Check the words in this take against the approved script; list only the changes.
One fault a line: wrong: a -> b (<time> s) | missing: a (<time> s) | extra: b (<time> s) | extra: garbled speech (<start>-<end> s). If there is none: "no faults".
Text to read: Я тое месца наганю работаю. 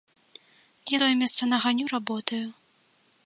no faults